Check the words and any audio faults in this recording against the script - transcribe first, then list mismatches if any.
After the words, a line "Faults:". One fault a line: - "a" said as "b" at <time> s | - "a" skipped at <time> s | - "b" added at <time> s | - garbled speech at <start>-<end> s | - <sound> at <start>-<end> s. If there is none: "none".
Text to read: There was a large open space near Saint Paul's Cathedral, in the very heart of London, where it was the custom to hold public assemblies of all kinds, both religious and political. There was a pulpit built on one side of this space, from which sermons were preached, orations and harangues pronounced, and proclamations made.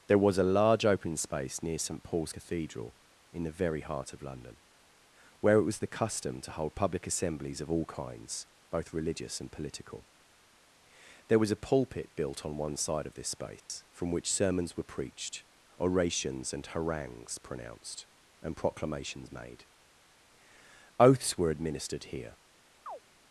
There was a large open space near Saint Paul's Cathedral, in the very heart of London, where it was the custom to hold public assemblies of all kinds, both religious and political. There was a pulpit built on one side of this space, from which sermons were preached, orations and harangues pronounced, and proclamations made. Oaths were administered here
Faults:
- dropout at 13.6-13.7 s
- "Oaths were administered here" added at 21.0 s
- chirp at 22.9-23.0 s